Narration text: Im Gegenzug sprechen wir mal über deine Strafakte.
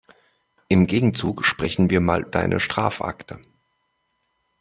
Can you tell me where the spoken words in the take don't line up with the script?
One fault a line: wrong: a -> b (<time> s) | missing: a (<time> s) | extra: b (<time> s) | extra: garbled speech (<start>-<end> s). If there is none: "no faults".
missing: über (2.2 s)